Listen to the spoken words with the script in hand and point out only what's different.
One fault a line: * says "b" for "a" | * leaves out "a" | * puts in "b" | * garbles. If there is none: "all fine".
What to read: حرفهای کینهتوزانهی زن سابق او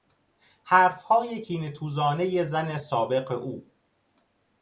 all fine